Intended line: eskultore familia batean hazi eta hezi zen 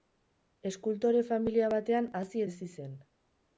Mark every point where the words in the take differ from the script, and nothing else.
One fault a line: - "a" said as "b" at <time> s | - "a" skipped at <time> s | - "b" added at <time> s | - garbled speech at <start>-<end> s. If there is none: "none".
- "eta" skipped at 2.4 s